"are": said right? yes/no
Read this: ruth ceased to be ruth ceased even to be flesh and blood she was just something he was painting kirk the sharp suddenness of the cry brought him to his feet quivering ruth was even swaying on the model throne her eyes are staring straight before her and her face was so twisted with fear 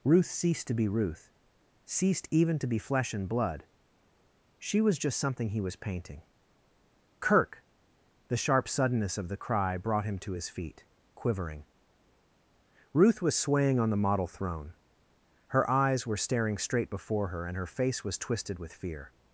no